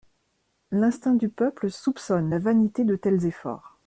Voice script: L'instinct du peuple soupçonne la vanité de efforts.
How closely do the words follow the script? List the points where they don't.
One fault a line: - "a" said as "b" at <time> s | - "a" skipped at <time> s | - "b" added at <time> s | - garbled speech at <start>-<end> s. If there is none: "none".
- "tels" added at 3.0 s